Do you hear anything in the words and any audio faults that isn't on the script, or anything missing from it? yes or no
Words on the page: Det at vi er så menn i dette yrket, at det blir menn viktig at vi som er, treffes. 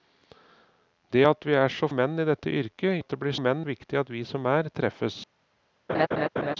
yes